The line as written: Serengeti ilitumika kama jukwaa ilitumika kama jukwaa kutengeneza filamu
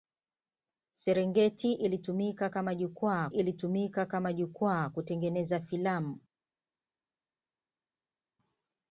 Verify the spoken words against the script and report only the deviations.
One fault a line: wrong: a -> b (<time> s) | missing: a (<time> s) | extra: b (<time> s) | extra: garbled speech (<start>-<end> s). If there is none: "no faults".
no faults